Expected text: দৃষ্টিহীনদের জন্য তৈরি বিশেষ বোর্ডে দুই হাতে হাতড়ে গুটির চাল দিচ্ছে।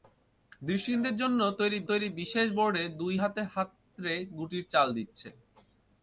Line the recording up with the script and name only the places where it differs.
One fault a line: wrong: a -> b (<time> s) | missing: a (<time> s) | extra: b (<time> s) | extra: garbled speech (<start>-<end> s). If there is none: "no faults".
extra: তৈরি (1.9 s)